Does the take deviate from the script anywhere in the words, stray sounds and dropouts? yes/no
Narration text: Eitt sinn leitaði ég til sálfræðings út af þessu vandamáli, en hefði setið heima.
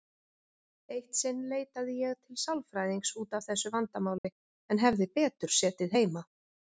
yes